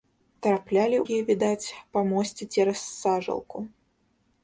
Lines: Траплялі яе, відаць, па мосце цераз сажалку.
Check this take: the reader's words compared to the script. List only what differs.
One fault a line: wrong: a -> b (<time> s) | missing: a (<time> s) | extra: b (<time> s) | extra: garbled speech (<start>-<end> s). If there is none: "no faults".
no faults